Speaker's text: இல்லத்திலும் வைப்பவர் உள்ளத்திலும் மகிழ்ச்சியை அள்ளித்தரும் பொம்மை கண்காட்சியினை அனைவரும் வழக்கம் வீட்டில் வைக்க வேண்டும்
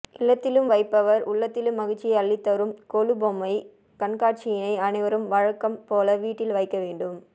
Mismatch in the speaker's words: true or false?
true